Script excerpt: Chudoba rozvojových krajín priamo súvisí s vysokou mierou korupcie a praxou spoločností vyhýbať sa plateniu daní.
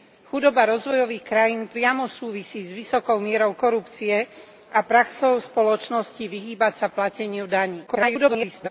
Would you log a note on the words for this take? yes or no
yes